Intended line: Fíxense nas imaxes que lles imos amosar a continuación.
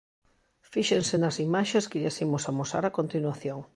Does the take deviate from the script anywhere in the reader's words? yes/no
no